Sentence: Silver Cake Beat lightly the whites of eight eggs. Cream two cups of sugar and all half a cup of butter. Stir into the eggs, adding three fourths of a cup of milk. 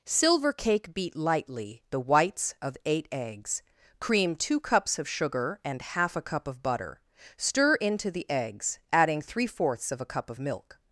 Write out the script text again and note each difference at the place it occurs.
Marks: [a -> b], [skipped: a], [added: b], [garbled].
Silver Cake Beat lightly the whites of eight eggs. Cream two cups of sugar and [skipped: all] half a cup of butter. Stir into the eggs, adding three fourths of a cup of milk.